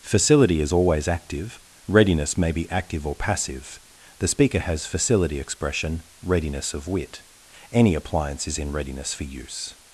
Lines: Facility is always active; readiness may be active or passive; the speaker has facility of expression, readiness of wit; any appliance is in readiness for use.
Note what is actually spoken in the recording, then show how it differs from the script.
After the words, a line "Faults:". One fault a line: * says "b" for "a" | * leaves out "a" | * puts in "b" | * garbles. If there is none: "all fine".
Facility is always active; readiness may be active or passive; the speaker has facility expression, readiness of wit; any appliance is in readiness for use.
Faults:
* leaves out "of"